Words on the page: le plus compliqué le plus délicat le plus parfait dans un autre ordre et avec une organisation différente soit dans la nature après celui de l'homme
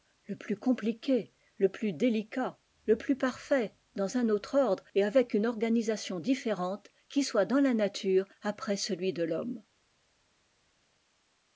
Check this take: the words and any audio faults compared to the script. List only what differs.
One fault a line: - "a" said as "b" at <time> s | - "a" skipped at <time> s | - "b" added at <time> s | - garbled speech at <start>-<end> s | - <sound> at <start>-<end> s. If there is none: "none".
- "qui" added at 7.1 s